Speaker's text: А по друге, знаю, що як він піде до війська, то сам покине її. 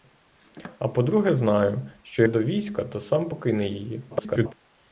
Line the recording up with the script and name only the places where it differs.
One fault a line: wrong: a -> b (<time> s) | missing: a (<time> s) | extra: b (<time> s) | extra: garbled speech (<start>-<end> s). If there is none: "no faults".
missing: як він піде (2.2 s)
extra: garbled speech (4.1-4.5 s)